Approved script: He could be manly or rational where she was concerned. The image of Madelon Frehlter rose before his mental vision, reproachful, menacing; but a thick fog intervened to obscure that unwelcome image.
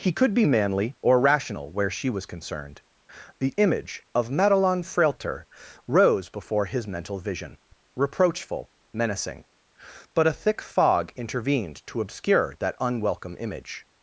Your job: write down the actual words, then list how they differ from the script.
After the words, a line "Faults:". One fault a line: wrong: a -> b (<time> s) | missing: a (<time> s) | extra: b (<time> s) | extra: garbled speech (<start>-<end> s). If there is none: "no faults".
He could be manly or rational where she was concerned. The image of Madelon Frehlter rose before his mental vision, reproachful, menacing; but a thick fog intervened to obscure that unwelcome image.
Faults:
no faults